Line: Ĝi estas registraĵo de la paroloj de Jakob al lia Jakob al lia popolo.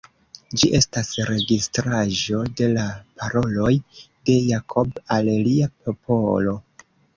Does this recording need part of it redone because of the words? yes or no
yes